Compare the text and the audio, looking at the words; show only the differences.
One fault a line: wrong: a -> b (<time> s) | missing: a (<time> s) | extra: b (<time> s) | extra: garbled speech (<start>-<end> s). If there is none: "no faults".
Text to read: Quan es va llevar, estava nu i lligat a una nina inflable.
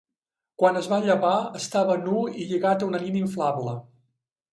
no faults